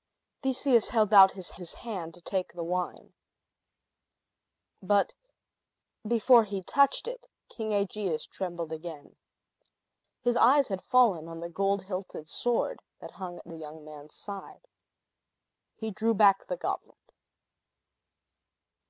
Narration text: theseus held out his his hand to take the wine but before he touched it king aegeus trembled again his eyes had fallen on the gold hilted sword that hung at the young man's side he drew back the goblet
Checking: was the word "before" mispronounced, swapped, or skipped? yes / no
no